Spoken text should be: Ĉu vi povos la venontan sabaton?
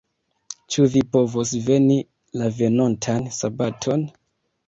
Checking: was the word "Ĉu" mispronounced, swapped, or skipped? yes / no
no